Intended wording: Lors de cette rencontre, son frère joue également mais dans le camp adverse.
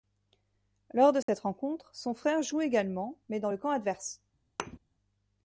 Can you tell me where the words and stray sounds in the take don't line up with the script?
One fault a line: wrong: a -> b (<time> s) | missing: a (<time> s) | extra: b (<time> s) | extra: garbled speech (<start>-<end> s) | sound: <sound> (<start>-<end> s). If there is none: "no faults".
sound: dropout (1.2-1.3 s)
sound: thud (4.6-4.8 s)